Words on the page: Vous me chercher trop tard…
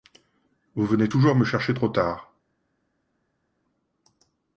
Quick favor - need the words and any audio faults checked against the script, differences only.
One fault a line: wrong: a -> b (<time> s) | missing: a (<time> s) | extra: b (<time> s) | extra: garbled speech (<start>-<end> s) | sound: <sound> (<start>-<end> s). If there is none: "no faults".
extra: venez toujours (0.9 s)